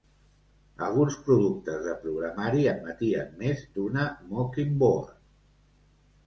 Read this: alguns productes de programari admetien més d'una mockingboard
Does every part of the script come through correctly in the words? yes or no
yes